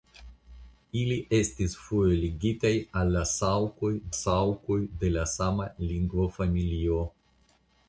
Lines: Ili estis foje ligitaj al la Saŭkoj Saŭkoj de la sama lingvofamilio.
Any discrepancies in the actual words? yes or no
no